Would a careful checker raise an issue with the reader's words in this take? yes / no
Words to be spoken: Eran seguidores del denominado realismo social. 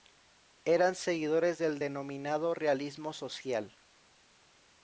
no